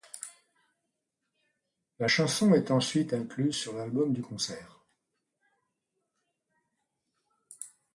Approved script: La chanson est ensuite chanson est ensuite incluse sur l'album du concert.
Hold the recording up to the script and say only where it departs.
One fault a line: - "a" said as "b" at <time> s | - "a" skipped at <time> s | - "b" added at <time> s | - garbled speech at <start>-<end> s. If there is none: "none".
- "chanson est ensuite" skipped at 3.1 s